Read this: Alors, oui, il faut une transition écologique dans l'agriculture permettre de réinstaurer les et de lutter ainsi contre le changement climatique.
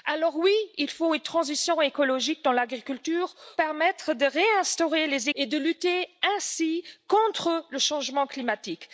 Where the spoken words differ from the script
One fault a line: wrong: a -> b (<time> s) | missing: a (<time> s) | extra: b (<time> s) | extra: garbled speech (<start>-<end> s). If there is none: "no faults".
no faults